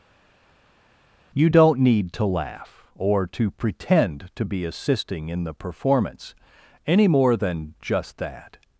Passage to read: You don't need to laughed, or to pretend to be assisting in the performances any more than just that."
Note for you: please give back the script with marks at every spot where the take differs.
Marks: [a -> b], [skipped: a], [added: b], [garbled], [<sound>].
You don't need to [laughed, -> laugh] or to pretend to be assisting in the [performances -> performance] any more than just that."